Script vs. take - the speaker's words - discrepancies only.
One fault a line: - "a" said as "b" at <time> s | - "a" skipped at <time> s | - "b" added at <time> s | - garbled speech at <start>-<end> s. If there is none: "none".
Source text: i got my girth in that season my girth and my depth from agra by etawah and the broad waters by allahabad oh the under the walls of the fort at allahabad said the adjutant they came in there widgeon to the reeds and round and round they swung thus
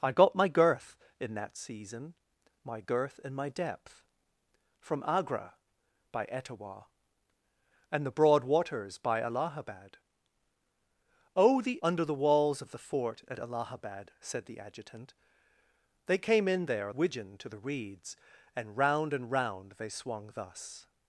none